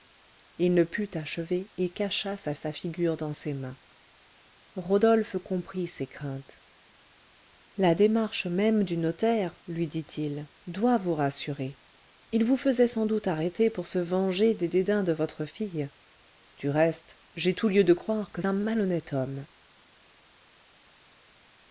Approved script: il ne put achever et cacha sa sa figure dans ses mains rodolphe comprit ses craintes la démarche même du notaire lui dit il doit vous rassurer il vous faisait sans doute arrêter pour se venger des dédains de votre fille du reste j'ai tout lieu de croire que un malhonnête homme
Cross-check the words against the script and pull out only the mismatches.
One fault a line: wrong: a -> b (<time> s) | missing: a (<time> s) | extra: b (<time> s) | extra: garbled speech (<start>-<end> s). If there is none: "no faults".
no faults